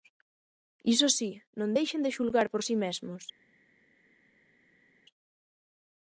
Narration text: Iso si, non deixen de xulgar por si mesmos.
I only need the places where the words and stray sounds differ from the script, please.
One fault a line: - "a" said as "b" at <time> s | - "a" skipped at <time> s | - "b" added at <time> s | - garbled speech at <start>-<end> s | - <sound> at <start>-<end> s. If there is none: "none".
none